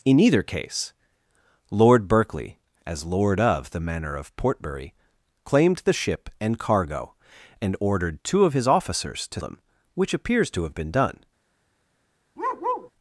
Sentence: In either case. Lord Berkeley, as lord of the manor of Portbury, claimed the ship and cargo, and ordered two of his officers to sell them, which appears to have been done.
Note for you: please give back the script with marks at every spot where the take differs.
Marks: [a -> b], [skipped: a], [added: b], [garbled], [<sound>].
In either case. Lord Berkeley, as lord of the manor of Portbury, claimed the ship and cargo, and ordered two of his officers to [skipped: sell] them, which appears to have been done. [bark]